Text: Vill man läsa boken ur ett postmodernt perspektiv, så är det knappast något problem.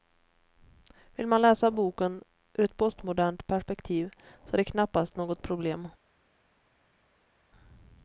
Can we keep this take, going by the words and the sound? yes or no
yes